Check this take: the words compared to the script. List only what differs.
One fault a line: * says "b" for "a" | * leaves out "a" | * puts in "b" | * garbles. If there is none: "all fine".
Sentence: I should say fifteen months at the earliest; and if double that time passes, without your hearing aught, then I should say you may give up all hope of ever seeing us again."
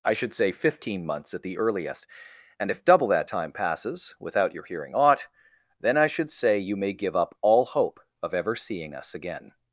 all fine